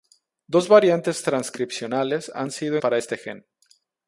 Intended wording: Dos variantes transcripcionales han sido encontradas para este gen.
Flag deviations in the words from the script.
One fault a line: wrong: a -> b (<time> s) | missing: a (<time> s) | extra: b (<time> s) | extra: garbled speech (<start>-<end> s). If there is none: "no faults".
missing: encontradas (2.8 s)